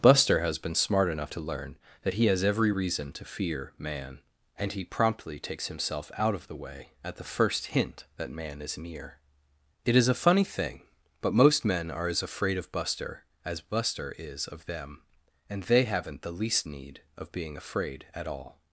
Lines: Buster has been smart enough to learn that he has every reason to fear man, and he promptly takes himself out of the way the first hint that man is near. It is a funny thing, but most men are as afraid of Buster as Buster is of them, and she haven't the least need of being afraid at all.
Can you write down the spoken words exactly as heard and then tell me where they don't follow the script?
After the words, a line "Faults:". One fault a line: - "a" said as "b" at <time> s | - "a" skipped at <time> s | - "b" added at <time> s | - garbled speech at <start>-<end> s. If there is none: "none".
Buster has been smart enough to learn that he has every reason to fear man, and he promptly takes himself out of the way at the first hint that man is near. It is a funny thing, but most men are as afraid of Buster as Buster is of them, and they haven't the least need of being afraid at all.
Faults:
- "at" added at 7.0 s
- "she" said as "they" at 15.6 s